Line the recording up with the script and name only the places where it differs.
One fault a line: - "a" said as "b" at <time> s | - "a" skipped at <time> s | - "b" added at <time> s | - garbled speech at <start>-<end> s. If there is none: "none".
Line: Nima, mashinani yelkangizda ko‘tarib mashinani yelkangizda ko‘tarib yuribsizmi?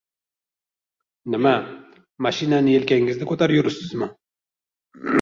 - "mashinani yelkangizda ko‘tarib" skipped at 3.6 s